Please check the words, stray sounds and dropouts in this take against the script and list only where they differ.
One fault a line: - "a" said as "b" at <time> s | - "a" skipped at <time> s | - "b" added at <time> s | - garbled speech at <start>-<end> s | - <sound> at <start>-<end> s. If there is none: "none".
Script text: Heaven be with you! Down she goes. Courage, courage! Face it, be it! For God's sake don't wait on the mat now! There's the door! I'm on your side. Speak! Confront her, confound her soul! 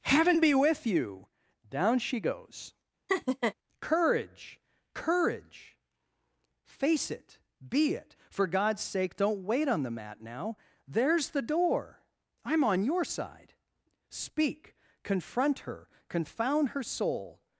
- laugh at 3.1-3.5 s